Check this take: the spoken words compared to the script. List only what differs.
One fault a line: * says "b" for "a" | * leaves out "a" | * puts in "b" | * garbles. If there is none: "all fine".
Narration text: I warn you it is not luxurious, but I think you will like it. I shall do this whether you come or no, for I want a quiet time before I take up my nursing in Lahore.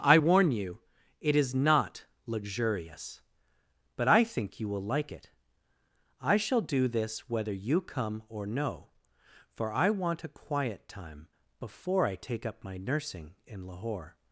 all fine